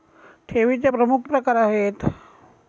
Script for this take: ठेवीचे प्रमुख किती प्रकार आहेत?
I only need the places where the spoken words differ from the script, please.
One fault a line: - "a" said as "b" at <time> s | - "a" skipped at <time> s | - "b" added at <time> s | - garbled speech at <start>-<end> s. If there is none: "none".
- "किती" skipped at 1.2 s